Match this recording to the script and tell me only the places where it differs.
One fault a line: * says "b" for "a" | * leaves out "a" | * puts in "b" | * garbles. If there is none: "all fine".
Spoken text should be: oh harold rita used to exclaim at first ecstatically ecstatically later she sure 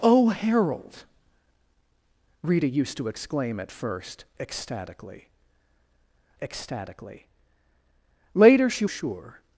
all fine